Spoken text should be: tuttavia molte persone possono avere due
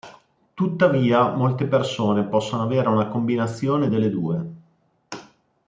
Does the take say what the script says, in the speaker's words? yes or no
no